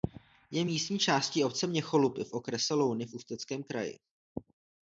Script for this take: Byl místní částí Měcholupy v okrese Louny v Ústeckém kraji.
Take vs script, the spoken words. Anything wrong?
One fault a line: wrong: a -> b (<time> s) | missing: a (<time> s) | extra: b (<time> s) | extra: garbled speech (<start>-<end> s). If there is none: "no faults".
wrong: Byl -> Je (0.5 s)
extra: obce (1.4 s)